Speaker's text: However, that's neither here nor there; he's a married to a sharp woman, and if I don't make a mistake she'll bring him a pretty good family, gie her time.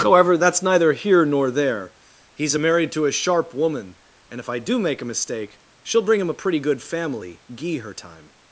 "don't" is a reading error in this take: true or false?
true